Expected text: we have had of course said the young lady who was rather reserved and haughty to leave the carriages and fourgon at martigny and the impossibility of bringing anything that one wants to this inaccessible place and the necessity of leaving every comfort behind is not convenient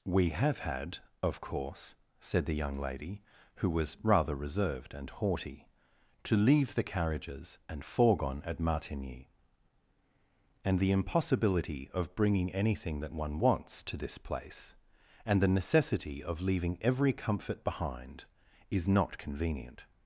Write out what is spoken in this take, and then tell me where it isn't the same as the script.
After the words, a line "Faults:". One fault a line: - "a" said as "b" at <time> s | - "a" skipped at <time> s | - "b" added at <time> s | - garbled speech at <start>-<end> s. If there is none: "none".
we have had of course said the young lady who was rather reserved and haughty to leave the carriages and fourgon at martigny and the impossibility of bringing anything that one wants to this place and the necessity of leaving every comfort behind is not convenient
Faults:
- "inaccessible" skipped at 14.2 s